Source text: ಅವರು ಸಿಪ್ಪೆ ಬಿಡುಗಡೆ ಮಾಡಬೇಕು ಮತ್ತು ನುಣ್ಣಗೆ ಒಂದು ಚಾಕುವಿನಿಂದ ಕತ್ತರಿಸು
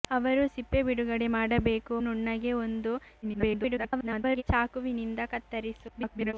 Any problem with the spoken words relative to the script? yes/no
yes